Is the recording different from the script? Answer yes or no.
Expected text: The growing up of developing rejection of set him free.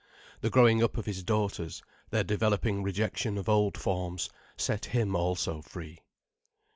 yes